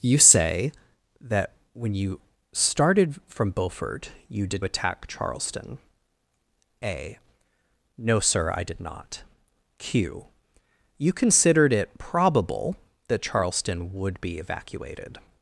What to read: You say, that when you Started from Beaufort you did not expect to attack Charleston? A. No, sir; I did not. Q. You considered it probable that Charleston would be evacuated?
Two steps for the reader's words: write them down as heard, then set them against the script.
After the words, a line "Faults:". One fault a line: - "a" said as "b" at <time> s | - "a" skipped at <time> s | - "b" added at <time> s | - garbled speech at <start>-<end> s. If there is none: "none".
You say, that when you Started from Beaufort you did attack Charleston? A. No, sir; I did not. Q. You considered it probable that Charleston would be evacuated?
Faults:
- "not expect to" skipped at 4.7 s